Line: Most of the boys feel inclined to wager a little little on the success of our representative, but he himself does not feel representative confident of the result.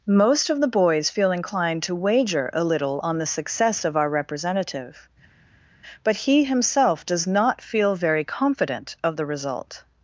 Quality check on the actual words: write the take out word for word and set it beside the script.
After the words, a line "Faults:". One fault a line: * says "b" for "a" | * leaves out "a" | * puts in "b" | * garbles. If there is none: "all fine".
Most of the boys feel inclined to wager a little on the success of our representative, but he himself does not feel very confident of the result.
Faults:
* leaves out "little"
* says "very" for "representative"